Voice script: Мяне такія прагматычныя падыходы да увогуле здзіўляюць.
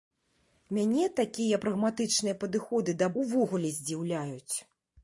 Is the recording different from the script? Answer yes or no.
no